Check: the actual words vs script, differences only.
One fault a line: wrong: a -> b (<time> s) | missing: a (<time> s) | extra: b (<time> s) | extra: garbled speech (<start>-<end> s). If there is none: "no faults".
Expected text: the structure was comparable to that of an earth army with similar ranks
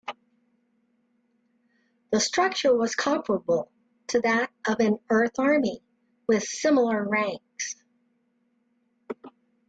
no faults